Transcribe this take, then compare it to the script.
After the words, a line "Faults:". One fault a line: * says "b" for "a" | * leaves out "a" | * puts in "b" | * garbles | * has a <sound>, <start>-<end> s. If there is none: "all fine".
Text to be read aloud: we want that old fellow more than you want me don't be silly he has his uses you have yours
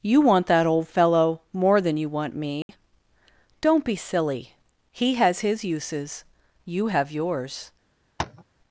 you want that old fellow more than you want me don't be silly he has his uses you have yours
Faults:
* says "you" for "we"
* has a dropout, 2.6-2.7 s
* has a tap, 8.2-8.4 s